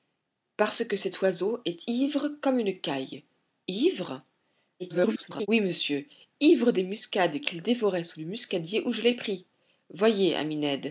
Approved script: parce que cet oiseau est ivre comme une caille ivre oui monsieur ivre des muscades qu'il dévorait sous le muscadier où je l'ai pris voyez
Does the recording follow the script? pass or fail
fail